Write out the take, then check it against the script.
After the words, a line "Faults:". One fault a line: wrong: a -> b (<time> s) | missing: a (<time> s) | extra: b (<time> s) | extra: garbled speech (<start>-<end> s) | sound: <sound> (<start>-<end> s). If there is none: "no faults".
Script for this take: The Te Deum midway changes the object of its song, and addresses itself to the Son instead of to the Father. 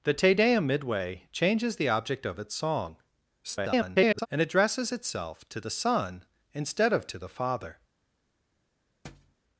The Te Deum midway changes the object of its song, [garbled] and addresses itself to the Son instead of to the Father.
Faults:
extra: garbled speech (3.4-4.3 s)
sound: thud (9.0-9.4 s)